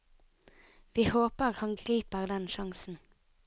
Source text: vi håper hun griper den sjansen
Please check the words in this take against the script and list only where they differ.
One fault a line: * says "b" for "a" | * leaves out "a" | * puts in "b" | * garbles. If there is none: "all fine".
* says "han" for "hun"